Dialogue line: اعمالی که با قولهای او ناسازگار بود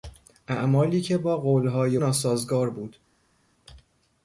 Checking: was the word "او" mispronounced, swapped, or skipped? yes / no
yes